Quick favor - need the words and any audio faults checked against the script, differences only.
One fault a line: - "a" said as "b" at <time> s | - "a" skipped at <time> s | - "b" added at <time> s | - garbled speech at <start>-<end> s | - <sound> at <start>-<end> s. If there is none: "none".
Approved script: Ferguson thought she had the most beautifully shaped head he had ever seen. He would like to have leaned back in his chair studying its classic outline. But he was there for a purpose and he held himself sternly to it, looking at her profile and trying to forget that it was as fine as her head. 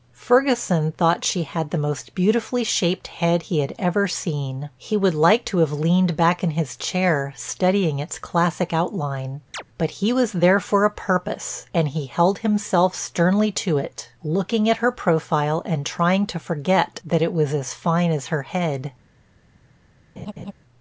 - chirp at 9.5-9.6 s
- laugh at 20.2-20.5 s